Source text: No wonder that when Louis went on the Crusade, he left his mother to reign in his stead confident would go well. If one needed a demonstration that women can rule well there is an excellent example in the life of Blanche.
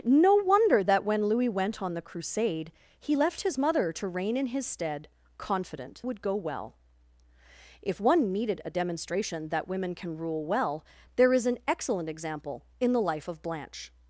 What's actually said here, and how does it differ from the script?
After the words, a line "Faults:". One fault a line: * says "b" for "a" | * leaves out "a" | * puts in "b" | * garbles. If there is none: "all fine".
No wonder that when Louis went on the Crusade, he left his mother to reign in his stead confident would go well. If one needed a demonstration that women can rule well there is an excellent example in the life of Blanche.
Faults:
all fine